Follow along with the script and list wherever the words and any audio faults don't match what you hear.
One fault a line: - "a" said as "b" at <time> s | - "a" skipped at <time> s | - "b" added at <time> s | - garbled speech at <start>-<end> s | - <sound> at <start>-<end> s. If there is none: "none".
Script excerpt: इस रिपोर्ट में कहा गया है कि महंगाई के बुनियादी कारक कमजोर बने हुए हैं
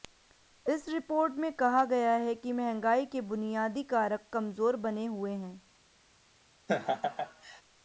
- laugh at 6.7-7.6 s